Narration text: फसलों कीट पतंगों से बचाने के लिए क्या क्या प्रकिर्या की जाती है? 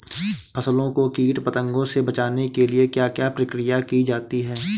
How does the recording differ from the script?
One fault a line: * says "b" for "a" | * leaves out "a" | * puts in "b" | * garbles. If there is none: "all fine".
* puts in "को"